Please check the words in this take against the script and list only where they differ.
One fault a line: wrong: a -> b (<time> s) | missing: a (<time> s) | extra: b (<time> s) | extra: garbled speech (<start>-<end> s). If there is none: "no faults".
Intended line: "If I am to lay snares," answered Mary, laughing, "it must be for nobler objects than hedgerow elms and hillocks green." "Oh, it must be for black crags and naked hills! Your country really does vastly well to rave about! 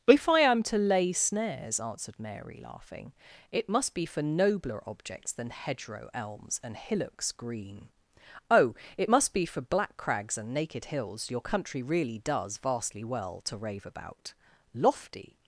extra: Lofty (14.7 s)